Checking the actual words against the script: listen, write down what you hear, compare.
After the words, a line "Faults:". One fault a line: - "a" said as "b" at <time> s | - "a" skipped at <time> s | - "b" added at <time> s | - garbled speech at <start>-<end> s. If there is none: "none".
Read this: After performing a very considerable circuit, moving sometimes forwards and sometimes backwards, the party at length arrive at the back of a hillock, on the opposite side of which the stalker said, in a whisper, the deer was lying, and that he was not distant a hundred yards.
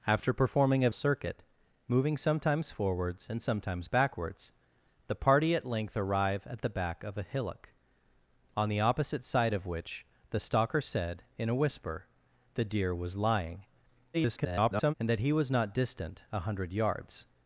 After performing a circuit, moving sometimes forwards and sometimes backwards, the party at length arrive at the back of a hillock, on the opposite side of which the stalker said, in a whisper, the deer was lying, [garbled] and that he was not distant a hundred yards.
Faults:
- "very considerable" skipped at 0.9 s
- garbled speech at 14.1-14.9 s